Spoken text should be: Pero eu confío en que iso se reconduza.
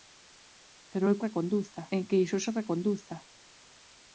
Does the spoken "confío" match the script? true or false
false